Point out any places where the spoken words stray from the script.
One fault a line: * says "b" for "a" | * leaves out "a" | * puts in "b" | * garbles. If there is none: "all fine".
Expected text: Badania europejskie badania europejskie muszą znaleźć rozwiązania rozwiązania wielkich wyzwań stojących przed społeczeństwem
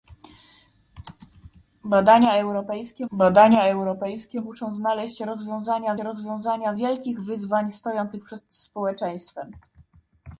all fine